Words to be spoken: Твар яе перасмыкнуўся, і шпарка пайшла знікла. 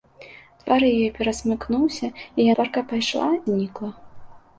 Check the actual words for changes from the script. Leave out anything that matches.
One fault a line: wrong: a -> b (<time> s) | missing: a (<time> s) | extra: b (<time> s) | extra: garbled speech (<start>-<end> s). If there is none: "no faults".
no faults